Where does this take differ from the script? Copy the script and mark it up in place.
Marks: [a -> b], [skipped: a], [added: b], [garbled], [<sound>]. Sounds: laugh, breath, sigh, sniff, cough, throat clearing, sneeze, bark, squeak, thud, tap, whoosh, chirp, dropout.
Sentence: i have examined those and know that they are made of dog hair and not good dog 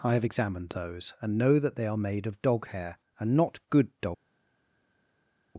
i have examined those and know that they are made of dog hair and not good dog